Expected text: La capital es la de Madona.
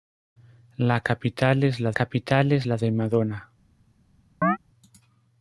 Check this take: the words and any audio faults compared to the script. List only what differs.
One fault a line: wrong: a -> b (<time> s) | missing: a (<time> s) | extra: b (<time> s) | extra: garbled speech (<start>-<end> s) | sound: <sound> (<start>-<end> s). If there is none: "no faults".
extra: capital es la (1.9 s)
sound: chirp (4.4-4.6 s)